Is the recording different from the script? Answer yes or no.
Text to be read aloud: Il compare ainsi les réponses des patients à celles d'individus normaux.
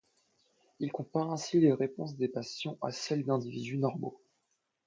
no